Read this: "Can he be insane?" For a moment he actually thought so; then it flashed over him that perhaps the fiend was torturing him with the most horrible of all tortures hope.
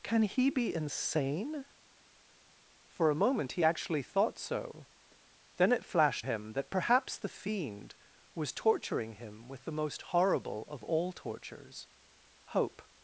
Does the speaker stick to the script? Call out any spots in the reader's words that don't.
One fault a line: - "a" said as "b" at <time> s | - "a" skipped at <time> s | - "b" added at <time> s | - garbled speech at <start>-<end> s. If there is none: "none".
- "over" skipped at 6.3 s